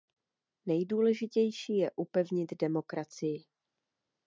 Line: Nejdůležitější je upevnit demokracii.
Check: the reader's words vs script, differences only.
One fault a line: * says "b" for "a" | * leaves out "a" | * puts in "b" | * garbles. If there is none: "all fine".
all fine